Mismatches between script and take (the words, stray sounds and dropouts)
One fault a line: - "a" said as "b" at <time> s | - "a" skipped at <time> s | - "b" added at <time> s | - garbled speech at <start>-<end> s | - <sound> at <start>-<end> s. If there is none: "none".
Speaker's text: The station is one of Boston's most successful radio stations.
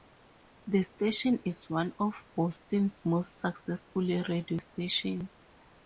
none